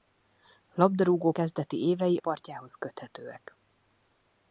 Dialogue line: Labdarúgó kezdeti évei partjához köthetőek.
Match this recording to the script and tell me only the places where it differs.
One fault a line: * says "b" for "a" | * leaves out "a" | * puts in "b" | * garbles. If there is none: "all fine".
all fine